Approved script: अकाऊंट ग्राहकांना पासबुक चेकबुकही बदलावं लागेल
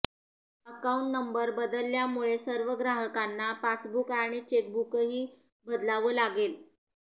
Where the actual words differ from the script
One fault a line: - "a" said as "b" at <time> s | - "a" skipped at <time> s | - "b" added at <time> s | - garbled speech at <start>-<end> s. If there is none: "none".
- "नंबर बदलल्यामुळे सर्व" added at 1.1 s
- "आणि" added at 4.1 s